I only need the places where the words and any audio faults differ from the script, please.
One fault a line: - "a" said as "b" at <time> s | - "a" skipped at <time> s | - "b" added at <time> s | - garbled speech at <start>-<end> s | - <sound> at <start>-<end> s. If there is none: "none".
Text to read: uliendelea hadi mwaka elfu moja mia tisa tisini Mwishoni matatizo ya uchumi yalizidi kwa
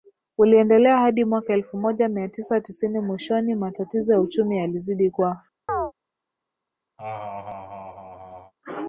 - chirp at 5.7-5.9 s
- laugh at 7.0-8.5 s